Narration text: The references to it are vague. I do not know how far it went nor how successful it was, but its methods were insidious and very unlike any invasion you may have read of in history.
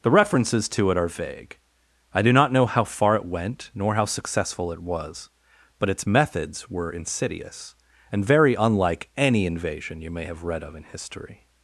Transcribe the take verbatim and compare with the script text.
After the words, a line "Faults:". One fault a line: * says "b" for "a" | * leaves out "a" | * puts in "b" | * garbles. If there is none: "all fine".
The references to it are vague. I do not know how far it went nor how successful it was, but its methods were insidious and very unlike any invasion you may have read of in history.
Faults:
all fine